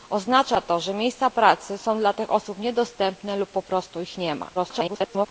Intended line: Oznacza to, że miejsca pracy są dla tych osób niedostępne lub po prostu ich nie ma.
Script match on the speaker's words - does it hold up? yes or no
no